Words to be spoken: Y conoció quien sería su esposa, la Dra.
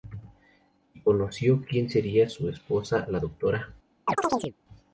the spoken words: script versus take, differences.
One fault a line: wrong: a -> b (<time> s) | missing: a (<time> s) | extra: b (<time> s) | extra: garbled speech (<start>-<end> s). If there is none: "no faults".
no faults